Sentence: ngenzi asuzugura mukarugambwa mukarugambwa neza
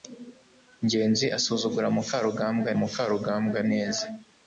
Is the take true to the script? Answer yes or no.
yes